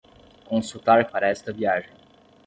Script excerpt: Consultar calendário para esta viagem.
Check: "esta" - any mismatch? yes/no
no